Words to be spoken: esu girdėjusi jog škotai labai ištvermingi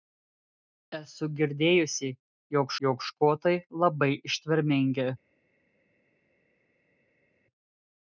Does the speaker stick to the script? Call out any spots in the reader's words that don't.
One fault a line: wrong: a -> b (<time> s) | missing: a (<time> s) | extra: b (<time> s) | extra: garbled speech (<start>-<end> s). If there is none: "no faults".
extra: jog (2.9 s)